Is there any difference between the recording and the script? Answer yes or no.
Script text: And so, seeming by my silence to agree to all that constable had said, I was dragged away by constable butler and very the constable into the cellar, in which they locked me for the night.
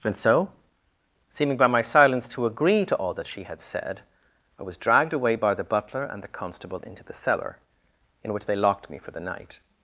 yes